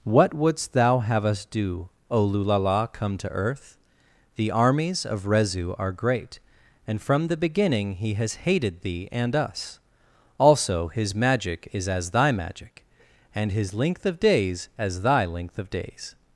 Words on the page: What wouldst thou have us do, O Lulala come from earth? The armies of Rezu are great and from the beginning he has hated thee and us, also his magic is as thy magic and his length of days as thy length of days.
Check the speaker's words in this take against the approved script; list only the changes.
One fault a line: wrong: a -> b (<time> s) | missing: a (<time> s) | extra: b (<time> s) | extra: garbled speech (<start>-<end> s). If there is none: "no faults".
wrong: from -> to (3.2 s)